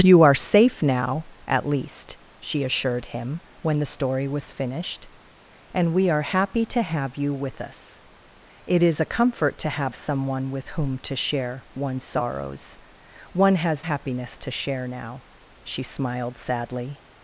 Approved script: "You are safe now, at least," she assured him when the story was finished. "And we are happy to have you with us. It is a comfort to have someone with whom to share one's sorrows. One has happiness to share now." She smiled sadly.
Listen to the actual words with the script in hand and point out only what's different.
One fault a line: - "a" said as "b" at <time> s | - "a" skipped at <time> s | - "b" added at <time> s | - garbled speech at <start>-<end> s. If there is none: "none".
none